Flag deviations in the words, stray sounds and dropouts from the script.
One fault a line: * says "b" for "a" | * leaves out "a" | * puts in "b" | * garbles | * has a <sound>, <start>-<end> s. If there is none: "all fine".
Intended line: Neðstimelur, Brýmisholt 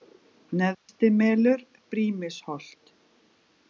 * has a dropout, 0.7-0.9 s